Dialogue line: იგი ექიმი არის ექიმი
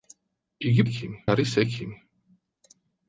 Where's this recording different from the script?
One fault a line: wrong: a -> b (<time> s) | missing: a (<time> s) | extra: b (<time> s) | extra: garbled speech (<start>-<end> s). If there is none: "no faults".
no faults